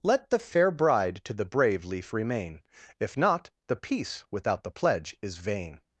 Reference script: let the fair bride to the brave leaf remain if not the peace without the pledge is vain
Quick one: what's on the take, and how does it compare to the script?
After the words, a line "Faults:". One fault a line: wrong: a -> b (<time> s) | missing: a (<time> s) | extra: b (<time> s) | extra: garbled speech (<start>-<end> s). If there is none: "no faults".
let the fair bride to the brave leaf remain if not the peace without the pledge is vain
Faults:
no faults